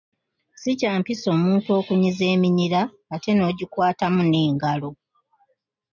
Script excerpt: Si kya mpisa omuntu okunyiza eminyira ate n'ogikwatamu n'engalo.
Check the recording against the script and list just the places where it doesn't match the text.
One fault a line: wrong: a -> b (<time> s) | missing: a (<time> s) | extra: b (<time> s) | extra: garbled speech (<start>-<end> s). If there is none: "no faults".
no faults